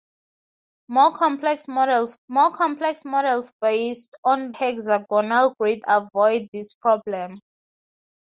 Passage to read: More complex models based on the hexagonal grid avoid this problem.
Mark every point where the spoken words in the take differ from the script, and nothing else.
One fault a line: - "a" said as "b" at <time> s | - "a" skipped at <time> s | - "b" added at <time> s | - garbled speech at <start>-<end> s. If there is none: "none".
- "more complex models" added at 2.3 s
- "the" skipped at 4.5 s